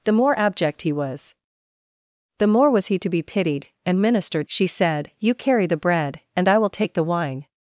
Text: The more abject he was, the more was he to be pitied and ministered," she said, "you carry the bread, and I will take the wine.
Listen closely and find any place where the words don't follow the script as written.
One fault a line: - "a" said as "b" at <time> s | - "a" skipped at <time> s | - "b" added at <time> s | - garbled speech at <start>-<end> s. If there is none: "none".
none